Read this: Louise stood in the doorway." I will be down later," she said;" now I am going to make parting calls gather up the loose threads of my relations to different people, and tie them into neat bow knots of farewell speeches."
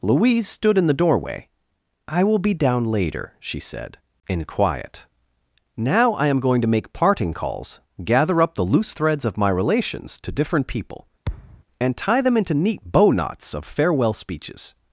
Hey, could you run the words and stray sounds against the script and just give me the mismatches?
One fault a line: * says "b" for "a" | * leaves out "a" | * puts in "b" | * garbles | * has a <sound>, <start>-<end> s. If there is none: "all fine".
* puts in "in quiet"
* has a thud, 11.3-11.6 s